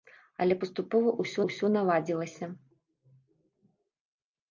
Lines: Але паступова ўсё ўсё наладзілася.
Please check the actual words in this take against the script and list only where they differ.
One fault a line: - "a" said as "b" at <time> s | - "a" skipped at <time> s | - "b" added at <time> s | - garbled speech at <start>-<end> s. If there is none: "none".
none